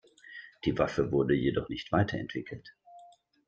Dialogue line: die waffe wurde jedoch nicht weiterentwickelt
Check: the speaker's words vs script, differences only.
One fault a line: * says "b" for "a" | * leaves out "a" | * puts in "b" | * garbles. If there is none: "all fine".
all fine